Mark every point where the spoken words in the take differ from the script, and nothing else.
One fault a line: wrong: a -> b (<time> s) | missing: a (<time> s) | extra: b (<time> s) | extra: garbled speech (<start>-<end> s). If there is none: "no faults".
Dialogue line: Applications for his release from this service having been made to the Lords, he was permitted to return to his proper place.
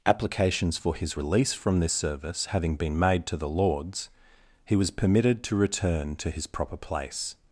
no faults